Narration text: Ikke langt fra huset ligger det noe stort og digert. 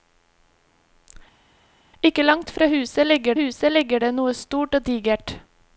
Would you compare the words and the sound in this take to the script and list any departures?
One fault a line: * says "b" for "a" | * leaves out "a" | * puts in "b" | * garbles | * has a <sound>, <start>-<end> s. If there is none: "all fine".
* puts in "huset ligger"